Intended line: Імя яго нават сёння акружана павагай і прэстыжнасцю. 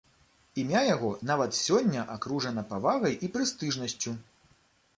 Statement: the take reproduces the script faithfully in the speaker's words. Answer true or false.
true